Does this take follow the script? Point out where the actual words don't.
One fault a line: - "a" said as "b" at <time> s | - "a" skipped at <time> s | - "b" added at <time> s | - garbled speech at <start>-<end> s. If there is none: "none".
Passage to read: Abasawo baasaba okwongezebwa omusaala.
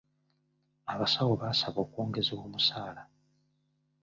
none